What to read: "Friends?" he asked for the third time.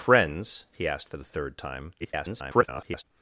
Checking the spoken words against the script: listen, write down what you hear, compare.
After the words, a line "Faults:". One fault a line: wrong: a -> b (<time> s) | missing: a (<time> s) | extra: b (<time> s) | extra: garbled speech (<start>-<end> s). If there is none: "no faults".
"Friends?" he asked for the third time. [garbled]
Faults:
extra: garbled speech (2.0-3.0 s)